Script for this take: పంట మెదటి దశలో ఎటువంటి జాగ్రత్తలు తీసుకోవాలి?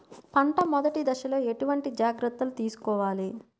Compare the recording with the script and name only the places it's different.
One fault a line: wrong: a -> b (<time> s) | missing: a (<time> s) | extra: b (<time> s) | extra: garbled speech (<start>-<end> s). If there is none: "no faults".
no faults